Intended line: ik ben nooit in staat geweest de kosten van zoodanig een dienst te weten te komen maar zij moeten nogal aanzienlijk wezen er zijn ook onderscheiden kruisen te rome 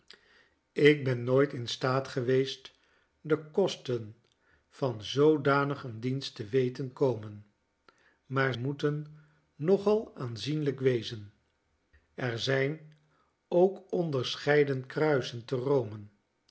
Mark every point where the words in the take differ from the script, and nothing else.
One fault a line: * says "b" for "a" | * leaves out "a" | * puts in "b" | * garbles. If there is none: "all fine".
* leaves out "te"
* leaves out "zij"